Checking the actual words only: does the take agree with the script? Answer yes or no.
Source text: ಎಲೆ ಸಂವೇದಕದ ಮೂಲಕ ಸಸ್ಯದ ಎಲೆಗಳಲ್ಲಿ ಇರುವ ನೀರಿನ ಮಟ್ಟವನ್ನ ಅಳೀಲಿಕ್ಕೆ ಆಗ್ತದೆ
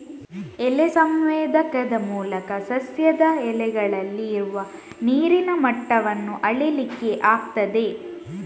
yes